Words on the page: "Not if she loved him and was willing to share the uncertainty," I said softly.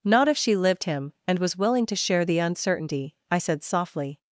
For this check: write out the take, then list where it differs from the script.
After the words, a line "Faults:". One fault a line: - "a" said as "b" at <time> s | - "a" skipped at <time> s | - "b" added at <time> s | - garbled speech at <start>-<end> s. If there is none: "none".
"Not if she lived him and was willing to share the uncertainty," I said softly.
Faults:
- "loved" said as "lived" at 0.6 s